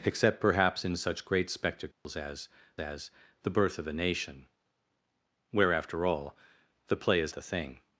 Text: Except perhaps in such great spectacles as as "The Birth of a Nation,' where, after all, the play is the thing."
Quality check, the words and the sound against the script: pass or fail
fail